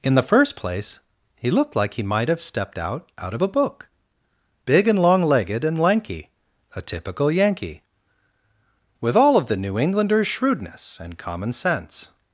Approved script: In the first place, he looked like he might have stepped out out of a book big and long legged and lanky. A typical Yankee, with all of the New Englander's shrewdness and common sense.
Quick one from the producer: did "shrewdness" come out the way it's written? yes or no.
yes